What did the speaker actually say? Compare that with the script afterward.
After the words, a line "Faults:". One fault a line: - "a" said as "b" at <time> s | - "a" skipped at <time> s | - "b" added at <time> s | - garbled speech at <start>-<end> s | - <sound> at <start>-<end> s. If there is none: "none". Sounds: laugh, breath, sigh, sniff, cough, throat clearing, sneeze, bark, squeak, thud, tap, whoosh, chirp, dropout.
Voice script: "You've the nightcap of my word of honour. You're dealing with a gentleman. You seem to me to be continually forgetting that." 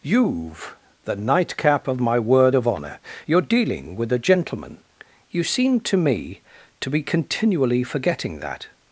"You've the nightcap of my word of honour. You're dealing with a gentleman. You seem to me to be continually forgetting that."
Faults:
none